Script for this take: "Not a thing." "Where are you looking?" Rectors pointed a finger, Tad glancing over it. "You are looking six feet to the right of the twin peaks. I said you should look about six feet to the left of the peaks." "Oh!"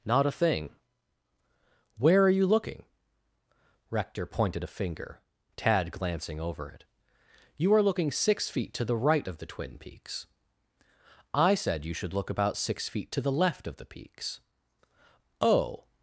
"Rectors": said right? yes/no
no